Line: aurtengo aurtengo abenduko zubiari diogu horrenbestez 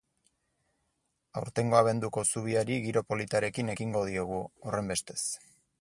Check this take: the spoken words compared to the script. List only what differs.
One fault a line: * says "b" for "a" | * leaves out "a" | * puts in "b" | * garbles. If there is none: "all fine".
* leaves out "aurtengo"
* puts in "giro politarekin ekingo"